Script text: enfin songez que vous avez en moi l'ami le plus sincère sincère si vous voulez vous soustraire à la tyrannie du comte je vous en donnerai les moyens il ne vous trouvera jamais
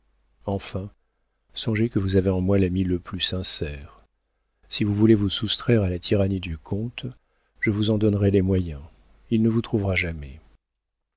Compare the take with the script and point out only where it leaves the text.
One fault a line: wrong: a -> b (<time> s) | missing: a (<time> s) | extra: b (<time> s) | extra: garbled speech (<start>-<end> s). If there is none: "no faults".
missing: sincère (4.0 s)